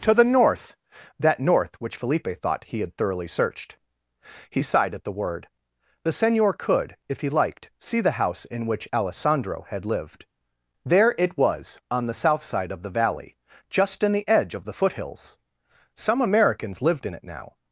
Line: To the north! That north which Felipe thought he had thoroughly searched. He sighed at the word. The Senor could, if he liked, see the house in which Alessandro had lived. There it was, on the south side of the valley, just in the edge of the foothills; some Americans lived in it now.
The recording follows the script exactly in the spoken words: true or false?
true